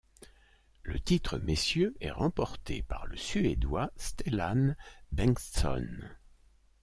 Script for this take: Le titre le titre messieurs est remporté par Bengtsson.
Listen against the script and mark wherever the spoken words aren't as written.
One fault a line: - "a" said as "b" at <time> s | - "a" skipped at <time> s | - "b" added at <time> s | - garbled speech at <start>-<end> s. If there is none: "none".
- "le titre" skipped at 1.4 s
- "le suédois Stellan" added at 3.1 s